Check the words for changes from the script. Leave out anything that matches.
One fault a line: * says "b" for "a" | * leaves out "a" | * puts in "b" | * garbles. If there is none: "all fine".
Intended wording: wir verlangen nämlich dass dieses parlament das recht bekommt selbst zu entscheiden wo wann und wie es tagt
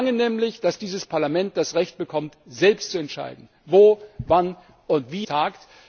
* leaves out "es"